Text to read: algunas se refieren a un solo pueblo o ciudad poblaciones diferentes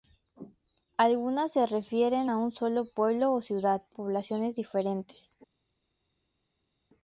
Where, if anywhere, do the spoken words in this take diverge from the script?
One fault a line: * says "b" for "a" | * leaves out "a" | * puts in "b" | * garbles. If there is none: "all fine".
all fine